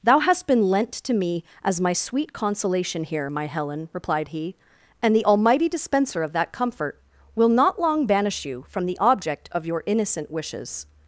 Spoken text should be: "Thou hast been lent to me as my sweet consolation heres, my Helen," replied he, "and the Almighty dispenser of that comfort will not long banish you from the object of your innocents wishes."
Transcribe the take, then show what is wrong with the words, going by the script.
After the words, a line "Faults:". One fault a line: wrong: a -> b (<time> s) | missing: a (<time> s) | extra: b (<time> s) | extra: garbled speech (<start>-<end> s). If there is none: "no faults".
"Thou hast been lent to me as my sweet consolation here, my Helen," replied he, "and the Almighty dispenser of that comfort will not long banish you from the object of your innocent wishes."
Faults:
wrong: heres -> here (3.0 s)
wrong: innocents -> innocent (9.8 s)